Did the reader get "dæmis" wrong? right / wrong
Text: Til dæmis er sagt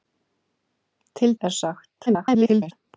wrong